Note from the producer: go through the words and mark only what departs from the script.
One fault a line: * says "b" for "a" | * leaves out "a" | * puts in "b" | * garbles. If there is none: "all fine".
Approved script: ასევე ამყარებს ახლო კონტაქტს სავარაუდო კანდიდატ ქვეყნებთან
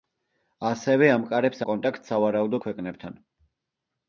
* leaves out "ახლო"
* leaves out "კანდიდატ"